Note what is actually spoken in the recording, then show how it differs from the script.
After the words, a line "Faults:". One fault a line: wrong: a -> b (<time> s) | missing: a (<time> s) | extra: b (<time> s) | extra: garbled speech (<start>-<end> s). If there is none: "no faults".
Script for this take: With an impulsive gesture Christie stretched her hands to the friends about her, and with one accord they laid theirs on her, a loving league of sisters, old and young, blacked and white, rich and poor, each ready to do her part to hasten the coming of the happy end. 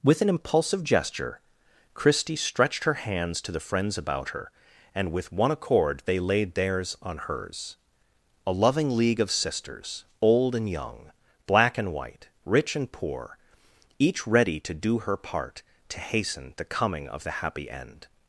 With an impulsive gesture Christie stretched her hands to the friends about her, and with one accord they laid theirs on hers, a loving league of sisters, old and young, black and white, rich and poor, each ready to do her part to hasten the coming of the happy end.
Faults:
wrong: her -> hers (7.2 s)
wrong: blacked -> black (11.5 s)